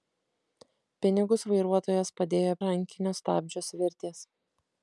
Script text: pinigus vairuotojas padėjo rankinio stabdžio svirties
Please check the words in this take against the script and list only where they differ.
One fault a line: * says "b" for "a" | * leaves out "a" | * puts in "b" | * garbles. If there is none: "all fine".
all fine